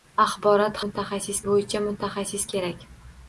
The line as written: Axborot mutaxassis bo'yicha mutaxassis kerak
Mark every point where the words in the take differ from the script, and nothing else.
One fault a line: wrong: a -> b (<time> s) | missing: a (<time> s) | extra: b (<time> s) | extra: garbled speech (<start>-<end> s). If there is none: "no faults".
no faults